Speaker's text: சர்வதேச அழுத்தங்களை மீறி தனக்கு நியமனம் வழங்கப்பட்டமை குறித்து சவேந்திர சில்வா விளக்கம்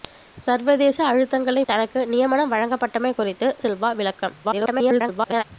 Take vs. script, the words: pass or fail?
fail